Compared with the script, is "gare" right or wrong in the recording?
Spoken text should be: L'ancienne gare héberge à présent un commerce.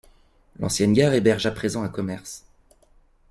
right